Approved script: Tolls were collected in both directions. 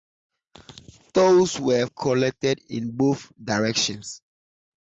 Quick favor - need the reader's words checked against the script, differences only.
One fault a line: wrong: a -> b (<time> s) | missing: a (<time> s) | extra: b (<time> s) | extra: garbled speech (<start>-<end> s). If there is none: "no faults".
no faults